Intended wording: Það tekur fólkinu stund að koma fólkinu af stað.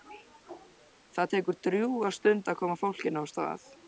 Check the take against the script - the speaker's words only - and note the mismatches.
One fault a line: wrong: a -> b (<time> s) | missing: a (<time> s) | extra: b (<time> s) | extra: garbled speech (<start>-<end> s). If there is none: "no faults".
wrong: fólkinu -> drjúga (1.7 s)